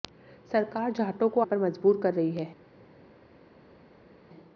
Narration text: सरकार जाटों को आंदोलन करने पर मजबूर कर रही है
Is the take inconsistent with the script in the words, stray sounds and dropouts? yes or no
yes